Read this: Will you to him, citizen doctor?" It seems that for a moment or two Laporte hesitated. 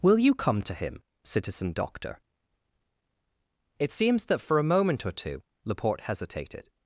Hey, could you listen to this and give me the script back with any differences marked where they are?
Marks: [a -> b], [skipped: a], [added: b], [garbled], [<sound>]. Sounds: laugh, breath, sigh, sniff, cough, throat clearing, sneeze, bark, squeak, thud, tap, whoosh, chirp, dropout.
Will you [added: come] to him, citizen doctor?" It seems that for a moment or two Laporte hesitated.